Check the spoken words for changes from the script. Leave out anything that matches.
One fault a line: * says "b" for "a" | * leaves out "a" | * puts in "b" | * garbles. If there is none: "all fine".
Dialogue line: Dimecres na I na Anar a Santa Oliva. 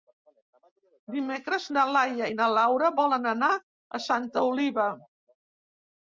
* puts in "Laia"
* puts in "Laura volen"